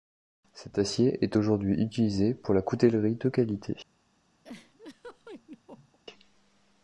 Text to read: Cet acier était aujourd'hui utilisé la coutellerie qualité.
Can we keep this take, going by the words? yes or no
no